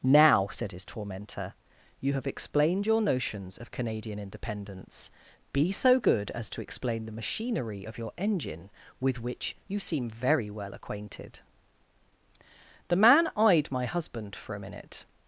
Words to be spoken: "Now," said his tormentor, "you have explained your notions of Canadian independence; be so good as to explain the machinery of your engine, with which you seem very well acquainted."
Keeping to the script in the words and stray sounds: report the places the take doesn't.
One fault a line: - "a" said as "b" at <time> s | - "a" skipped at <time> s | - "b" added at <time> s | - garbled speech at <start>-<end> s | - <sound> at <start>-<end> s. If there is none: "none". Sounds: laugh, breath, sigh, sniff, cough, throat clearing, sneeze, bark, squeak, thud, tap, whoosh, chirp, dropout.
- "The man eyed my husband for a minute" added at 12.9 s